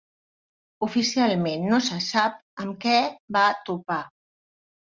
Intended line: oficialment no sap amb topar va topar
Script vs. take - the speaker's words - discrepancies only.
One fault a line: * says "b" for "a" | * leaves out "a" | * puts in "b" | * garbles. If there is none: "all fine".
* puts in "se"
* says "què" for "topar"